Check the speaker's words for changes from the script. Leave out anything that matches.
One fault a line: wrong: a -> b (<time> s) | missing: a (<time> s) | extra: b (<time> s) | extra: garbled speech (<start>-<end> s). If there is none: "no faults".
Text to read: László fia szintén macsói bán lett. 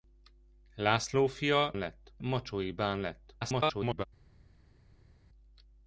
wrong: szintén -> lett (1.8 s)
extra: garbled speech (3.4-4.0 s)